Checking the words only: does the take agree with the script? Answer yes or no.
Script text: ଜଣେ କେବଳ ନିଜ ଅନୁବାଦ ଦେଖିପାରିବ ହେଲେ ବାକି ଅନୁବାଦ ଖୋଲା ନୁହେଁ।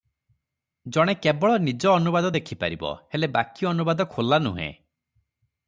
yes